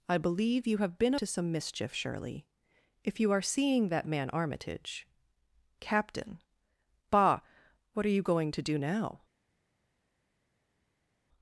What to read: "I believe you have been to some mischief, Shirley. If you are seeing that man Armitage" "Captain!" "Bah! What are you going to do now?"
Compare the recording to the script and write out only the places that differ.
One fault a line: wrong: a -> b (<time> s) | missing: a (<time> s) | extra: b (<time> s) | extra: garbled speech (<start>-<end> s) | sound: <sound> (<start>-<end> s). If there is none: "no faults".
no faults